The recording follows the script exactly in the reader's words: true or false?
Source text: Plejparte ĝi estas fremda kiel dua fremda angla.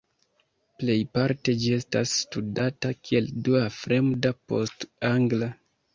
false